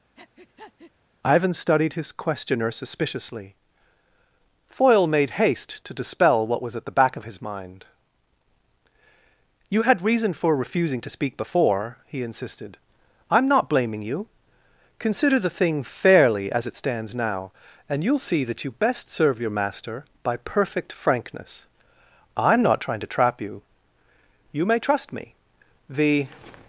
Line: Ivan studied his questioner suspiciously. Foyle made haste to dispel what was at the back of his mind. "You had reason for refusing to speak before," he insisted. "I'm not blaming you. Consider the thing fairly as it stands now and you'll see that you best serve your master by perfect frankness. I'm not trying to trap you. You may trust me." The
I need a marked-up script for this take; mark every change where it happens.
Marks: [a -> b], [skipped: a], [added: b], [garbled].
Ivan studied his questioner suspiciously. Foyle made haste to dispel what was at the back of his mind. "You had reason for refusing to speak before," he insisted. "I'm not blaming you. Consider the thing fairly as it stands now and you'll see that you best serve your master by perfect frankness. I'm not trying to trap you. You may trust me." The